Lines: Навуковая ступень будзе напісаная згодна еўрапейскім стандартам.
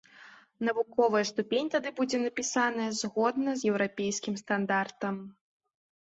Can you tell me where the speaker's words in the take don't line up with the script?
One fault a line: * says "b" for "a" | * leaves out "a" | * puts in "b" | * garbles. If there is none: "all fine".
* puts in "тады"
* puts in "з"